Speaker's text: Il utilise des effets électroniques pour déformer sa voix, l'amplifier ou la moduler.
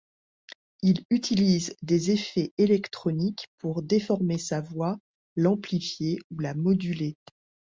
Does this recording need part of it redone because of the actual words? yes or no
no